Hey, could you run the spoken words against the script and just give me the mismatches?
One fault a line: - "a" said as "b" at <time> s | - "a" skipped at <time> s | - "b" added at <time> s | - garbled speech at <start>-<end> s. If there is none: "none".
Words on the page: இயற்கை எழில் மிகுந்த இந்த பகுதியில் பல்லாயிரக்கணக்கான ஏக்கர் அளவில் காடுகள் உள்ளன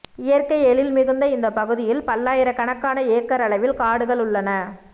none